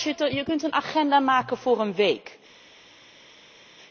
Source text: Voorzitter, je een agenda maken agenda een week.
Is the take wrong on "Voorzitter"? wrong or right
right